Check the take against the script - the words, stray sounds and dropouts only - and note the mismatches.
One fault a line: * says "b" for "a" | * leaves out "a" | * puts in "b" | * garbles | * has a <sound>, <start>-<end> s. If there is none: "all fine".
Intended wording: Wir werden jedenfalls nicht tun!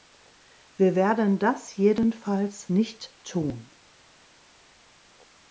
* puts in "das"